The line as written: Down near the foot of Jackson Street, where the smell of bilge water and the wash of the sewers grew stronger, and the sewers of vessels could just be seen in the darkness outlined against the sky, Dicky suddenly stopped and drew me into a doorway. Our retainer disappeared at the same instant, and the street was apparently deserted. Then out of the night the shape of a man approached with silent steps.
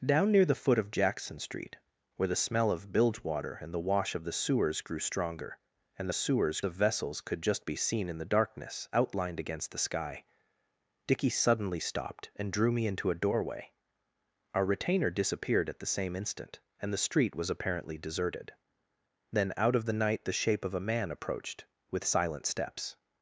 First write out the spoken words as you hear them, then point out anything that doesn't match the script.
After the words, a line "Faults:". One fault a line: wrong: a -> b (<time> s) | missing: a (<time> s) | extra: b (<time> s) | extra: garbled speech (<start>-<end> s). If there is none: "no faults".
Down near the foot of Jackson Street, where the smell of bilge water and the wash of the sewers grew stronger, and the sewers of vessels could just be seen in the darkness outlined against the sky, Dicky suddenly stopped and drew me into a doorway. Our retainer disappeared at the same instant, and the street was apparently deserted. Then out of the night the shape of a man approached with silent steps.
Faults:
no faults